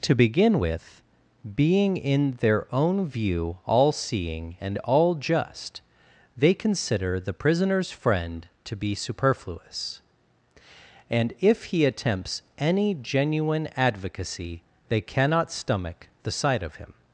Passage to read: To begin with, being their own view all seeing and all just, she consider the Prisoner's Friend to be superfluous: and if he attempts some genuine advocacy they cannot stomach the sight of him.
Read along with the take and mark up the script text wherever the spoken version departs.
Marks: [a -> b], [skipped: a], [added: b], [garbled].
To begin with, being [added: in] their own view all seeing and all just, [she -> they] consider the Prisoner's Friend to be superfluous: and if he attempts [some -> any] genuine advocacy they cannot stomach the sight of him.